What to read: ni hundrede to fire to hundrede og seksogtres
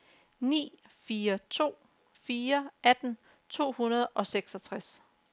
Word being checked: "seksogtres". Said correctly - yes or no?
yes